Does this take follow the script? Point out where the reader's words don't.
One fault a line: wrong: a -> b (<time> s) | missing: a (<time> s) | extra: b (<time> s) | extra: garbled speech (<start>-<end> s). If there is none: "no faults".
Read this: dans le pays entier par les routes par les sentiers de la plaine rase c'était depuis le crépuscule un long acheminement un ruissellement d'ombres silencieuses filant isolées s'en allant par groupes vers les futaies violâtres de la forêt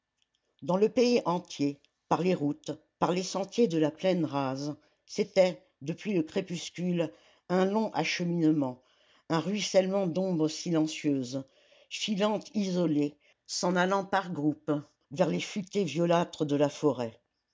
no faults